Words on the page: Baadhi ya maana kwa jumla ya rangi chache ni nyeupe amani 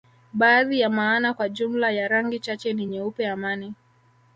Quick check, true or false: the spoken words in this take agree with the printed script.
true